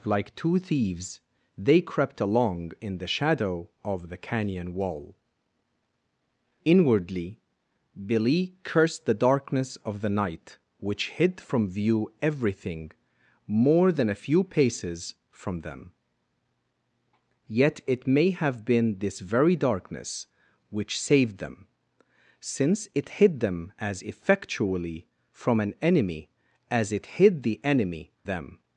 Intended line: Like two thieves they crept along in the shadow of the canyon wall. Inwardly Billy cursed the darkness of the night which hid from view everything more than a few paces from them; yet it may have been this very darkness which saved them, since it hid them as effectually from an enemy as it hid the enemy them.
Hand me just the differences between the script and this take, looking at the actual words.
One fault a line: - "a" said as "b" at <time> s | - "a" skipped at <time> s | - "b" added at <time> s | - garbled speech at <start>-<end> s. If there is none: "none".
none